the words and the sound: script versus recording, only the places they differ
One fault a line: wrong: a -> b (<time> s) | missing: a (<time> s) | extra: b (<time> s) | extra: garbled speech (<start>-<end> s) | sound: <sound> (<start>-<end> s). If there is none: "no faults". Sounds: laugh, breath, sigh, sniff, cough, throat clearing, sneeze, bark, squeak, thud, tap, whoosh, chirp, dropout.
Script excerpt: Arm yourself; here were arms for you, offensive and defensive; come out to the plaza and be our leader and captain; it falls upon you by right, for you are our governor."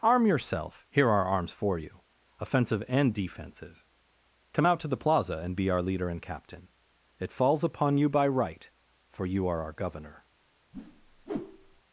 wrong: were -> are (1.1 s)
sound: whoosh (10.7-11.8 s)